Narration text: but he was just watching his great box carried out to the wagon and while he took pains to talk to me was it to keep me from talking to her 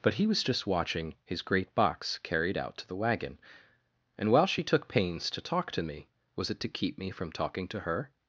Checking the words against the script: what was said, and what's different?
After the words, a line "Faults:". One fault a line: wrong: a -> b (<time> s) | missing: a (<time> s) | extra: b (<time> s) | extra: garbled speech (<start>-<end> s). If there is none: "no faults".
but he was just watching his great box carried out to the wagon and while she took pains to talk to me was it to keep me from talking to her
Faults:
wrong: he -> she (4.5 s)